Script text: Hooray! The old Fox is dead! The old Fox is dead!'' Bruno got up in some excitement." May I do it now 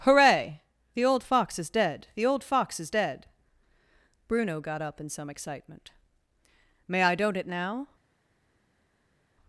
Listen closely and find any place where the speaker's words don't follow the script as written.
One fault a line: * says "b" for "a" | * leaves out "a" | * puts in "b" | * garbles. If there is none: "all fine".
* says "don't" for "do"